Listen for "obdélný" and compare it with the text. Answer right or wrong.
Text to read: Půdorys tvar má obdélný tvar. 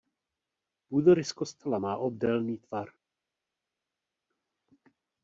right